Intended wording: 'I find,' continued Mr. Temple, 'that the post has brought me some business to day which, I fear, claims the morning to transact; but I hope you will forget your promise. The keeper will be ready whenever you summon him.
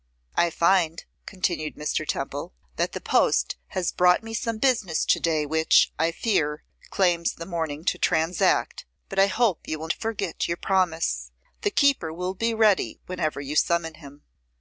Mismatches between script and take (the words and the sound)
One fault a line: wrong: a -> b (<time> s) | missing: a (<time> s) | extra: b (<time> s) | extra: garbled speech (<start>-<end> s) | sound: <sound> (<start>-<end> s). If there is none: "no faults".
no faults